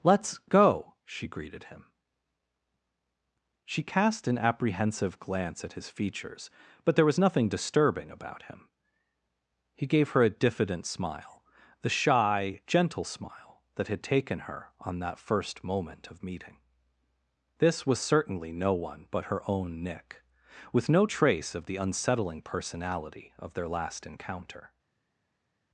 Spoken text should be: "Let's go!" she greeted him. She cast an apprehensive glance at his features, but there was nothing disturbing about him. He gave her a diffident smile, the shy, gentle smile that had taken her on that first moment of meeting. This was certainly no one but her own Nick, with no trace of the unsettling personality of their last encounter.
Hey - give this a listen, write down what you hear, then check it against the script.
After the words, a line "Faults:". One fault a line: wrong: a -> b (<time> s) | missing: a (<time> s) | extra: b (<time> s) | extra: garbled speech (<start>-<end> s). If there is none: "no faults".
"Let's go!" she greeted him. She cast an apprehensive glance at his features, but there was nothing disturbing about him. He gave her a diffident smile, the shy, gentle smile that had taken her on that first moment of meeting. This was certainly no one but her own Nick, with no trace of the unsettling personality of their last encounter.
Faults:
no faults